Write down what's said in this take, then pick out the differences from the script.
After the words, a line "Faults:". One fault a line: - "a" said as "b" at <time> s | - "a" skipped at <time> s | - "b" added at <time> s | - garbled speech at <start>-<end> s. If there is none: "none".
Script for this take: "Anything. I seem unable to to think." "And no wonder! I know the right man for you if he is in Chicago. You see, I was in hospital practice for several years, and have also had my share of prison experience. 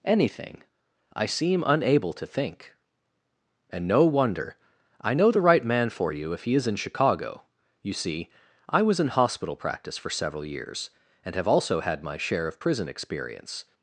"Anything. I seem unable to think." "And no wonder! I know the right man for you if he is in Chicago. You see, I was in hospital practice for several years, and have also had my share of prison experience.
Faults:
- "to" skipped at 2.2 s